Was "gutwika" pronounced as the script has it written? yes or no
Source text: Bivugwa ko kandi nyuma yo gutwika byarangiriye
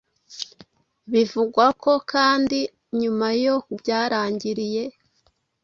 no